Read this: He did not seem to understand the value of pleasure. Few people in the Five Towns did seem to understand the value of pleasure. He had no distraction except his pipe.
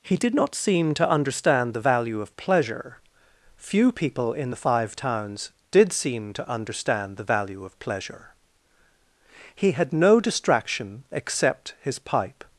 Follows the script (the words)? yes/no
yes